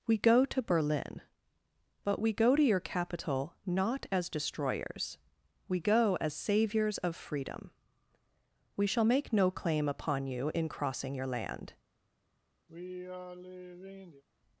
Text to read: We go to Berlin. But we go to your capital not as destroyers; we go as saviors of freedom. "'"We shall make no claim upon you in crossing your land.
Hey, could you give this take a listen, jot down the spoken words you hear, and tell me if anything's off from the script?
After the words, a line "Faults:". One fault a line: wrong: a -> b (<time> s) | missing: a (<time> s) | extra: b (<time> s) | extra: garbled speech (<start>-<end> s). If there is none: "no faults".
We go to Berlin. But we go to your capital not as destroyers; we go as saviors of freedom. "'"We shall make no claim upon you in crossing your land.
Faults:
no faults